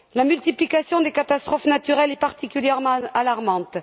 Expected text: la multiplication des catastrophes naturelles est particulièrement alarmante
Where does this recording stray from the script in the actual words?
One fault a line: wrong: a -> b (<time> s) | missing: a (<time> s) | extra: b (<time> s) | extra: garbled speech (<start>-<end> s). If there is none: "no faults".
no faults